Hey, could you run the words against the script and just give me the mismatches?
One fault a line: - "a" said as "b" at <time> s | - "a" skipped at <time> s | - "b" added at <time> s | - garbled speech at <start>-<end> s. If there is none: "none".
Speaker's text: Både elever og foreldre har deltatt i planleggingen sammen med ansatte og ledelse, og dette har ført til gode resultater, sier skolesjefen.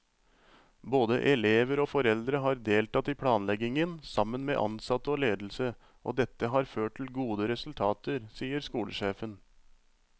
none